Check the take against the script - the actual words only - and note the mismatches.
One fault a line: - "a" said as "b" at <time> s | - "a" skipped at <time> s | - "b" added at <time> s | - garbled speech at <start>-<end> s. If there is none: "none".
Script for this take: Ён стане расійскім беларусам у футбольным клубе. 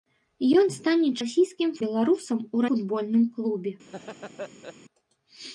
none